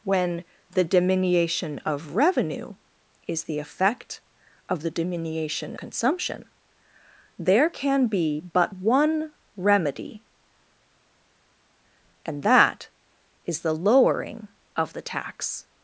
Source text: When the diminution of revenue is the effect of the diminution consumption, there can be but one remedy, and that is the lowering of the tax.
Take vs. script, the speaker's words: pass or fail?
pass